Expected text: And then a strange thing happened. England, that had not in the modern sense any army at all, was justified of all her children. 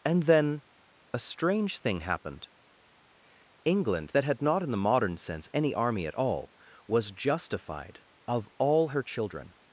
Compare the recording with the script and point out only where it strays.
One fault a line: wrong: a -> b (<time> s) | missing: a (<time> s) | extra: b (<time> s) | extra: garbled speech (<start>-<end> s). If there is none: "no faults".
no faults